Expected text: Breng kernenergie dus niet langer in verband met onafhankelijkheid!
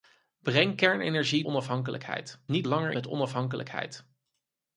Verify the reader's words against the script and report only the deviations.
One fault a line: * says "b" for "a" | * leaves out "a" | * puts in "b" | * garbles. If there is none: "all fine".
* says "onafhankelijkheid" for "dus"
* leaves out "in verband"